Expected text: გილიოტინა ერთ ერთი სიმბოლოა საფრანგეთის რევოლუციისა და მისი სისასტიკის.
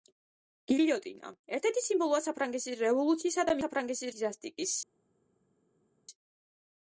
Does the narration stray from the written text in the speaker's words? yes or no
yes